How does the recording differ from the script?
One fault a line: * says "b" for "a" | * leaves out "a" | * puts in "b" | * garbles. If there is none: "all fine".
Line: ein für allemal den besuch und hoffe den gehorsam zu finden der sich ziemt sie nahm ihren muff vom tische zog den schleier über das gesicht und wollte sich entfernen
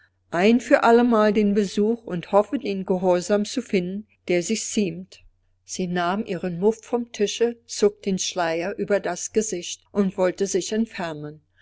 all fine